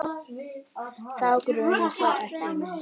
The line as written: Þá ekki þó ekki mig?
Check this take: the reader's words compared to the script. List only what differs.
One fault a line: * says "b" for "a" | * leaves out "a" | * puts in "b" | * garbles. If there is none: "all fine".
* says "grunar" for "ekki"